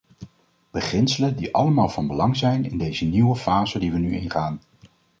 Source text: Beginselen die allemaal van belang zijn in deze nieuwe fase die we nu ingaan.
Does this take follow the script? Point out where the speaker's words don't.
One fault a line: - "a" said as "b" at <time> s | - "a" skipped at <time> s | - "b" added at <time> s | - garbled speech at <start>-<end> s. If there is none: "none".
none